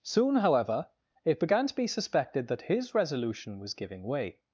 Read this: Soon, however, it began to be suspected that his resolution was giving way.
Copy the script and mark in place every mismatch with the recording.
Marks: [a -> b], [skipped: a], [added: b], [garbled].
Soon, however, it began to be suspected that his resolution was giving way.